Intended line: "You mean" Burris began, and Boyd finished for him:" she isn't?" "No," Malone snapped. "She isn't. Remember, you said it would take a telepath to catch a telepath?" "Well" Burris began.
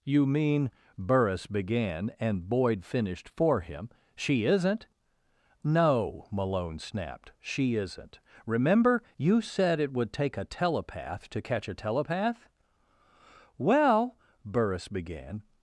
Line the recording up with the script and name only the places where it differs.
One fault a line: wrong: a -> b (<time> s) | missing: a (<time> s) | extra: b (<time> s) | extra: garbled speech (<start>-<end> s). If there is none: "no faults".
no faults